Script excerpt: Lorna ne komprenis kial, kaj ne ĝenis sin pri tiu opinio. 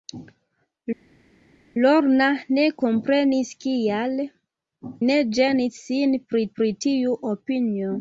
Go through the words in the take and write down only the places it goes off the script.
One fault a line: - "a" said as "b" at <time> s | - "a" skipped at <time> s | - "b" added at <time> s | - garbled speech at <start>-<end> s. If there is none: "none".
- "kaj" skipped at 4.1 s
- "pri" added at 6.6 s